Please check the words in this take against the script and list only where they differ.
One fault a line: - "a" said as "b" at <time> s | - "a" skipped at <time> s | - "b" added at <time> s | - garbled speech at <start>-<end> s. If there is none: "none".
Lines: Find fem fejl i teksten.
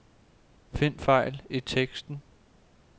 - "fem" skipped at 1.0 s